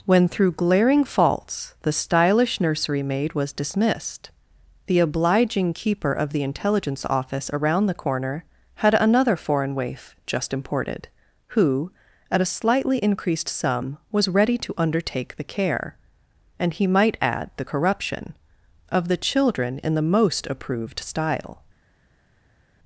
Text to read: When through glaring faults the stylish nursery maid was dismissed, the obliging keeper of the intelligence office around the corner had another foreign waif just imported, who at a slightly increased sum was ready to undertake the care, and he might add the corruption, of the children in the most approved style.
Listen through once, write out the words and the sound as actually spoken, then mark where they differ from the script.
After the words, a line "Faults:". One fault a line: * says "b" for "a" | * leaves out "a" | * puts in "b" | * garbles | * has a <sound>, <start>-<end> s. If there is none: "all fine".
When through glaring faults the stylish nursery maid was dismissed, the obliging keeper of the intelligence office around the corner had another foreign waif just imported, who at a slightly increased sum was ready to undertake the care, and he might add the corruption, of the children in the most approved style.
Faults:
all fine